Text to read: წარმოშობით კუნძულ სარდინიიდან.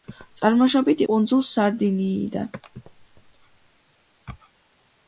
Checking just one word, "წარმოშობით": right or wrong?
right